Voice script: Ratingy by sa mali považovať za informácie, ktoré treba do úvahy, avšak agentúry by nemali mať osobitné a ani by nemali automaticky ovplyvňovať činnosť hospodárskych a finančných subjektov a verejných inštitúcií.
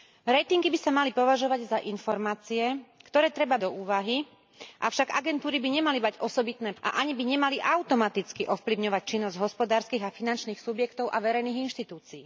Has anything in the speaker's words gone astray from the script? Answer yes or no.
no